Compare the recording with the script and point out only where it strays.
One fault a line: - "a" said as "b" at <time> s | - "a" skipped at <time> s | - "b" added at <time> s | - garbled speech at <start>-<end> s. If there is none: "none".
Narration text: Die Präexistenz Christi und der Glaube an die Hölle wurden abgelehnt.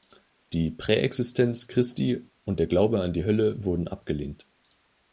none